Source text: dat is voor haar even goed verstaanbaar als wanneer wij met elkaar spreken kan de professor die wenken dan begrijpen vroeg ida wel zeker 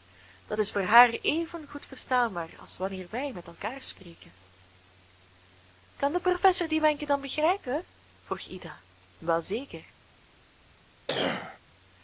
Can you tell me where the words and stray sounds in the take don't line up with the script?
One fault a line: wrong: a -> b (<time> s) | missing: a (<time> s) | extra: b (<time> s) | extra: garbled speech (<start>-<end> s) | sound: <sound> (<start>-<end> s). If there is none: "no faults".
sound: cough (11.1-11.6 s)